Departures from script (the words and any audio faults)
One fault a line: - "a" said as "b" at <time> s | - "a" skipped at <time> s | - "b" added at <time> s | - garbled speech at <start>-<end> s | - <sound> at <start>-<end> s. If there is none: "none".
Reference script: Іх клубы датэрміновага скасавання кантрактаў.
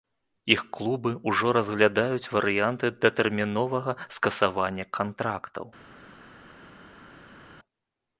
- "ўжо разглядаюць варыянты" added at 1.3 s